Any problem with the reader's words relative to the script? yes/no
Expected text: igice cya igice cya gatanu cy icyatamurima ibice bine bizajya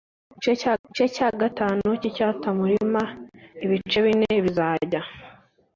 no